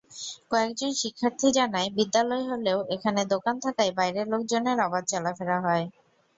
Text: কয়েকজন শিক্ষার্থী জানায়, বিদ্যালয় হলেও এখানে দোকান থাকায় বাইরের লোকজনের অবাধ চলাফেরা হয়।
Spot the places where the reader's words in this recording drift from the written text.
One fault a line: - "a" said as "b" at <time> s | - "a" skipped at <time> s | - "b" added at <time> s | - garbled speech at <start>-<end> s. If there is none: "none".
none